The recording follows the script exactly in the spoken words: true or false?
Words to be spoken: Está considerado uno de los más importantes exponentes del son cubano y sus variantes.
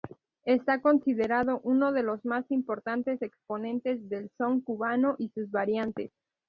true